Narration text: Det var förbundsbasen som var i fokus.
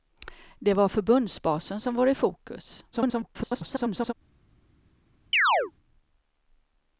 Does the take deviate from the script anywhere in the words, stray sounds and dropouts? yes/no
yes